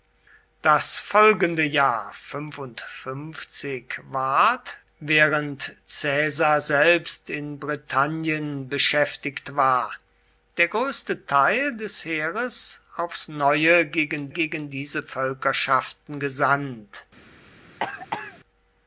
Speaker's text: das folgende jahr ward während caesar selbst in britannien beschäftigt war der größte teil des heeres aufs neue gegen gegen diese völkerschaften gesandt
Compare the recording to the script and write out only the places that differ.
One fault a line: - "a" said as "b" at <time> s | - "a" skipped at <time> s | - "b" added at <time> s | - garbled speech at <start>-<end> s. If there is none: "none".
none